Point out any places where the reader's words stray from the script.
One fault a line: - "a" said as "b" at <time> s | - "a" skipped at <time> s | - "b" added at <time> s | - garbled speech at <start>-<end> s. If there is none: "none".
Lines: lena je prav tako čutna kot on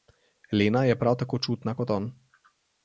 none